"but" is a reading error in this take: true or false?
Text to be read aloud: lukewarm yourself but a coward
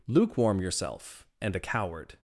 true